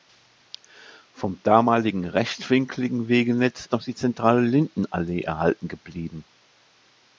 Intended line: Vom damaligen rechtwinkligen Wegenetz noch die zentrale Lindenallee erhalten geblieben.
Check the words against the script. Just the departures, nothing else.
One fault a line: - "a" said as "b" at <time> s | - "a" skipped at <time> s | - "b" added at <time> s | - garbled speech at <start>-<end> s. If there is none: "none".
none